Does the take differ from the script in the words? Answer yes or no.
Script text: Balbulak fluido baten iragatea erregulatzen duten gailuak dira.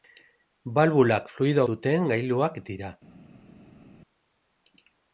yes